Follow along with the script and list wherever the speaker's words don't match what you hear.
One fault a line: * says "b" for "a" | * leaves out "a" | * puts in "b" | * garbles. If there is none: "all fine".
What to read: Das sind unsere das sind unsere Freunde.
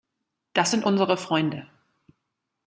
* leaves out "das sind unsere"